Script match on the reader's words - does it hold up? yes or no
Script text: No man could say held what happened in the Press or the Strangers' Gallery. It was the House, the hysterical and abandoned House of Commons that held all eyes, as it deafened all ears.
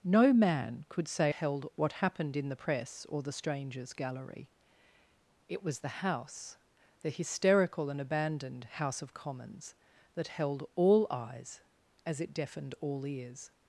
yes